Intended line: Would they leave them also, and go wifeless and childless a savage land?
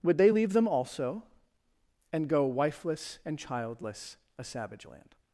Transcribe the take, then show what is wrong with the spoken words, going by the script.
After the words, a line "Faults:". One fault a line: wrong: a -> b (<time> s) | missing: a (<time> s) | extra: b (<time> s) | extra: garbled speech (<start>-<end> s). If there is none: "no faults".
Would they leave them also, and go wifeless and childless a savage land?
Faults:
no faults